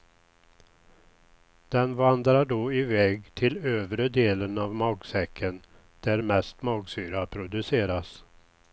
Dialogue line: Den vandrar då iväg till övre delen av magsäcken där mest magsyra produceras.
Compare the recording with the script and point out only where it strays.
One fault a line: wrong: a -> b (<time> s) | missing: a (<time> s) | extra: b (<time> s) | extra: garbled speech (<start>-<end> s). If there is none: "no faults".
no faults